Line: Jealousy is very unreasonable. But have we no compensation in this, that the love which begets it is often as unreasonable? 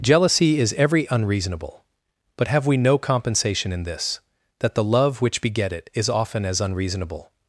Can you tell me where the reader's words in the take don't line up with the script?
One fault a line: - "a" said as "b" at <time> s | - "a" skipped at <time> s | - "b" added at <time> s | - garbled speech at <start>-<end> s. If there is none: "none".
- "very" said as "every" at 0.8 s
- "begets" said as "beget" at 5.4 s